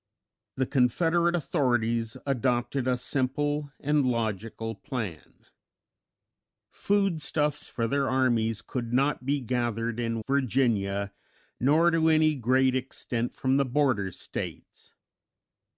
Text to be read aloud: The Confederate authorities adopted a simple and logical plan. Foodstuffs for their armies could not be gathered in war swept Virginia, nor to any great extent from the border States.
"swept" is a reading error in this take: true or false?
true